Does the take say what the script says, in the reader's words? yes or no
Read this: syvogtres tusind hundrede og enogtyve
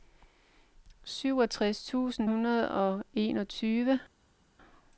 yes